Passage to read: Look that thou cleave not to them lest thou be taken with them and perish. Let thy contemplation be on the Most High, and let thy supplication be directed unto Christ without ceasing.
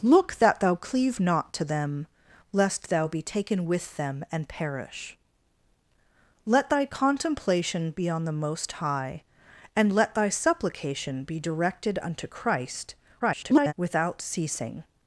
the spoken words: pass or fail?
fail